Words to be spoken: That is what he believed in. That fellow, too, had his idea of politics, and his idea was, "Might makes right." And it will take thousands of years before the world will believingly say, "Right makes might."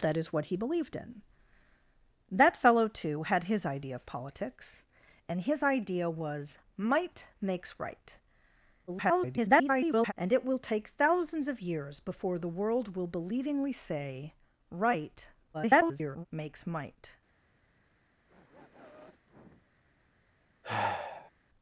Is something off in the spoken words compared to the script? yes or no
yes